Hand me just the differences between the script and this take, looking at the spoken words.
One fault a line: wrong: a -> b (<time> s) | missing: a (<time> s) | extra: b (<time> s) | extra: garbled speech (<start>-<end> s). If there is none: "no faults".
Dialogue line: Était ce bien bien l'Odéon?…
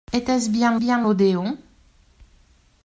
no faults